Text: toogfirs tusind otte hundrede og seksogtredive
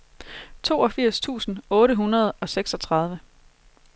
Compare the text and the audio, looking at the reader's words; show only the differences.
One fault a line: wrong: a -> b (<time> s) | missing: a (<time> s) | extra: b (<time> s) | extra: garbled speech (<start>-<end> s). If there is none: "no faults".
no faults